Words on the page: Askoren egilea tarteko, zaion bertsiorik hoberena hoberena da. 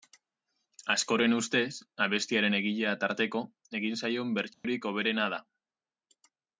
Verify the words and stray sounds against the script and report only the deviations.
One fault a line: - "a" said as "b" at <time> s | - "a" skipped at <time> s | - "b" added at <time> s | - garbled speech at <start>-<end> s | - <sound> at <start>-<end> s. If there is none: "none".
- "ustez abestiaren" added at 1.4 s
- "egin" added at 3.8 s
- dropout at 4.5-4.6 s
- "hoberena" skipped at 5.3 s